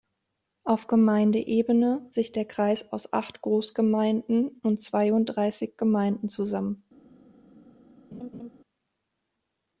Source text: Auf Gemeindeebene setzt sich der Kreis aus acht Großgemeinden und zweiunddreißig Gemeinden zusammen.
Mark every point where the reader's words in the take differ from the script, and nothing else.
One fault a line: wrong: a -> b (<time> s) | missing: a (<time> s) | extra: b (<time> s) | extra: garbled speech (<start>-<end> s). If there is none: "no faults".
missing: setzt (2.0 s)